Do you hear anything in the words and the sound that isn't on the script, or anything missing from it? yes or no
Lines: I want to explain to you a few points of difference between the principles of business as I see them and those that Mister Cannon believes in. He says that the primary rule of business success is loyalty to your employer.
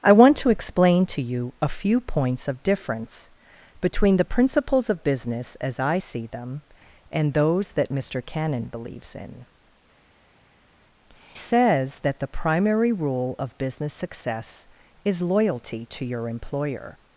yes